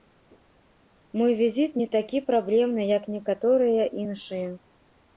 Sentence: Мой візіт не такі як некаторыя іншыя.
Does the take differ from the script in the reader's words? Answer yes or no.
yes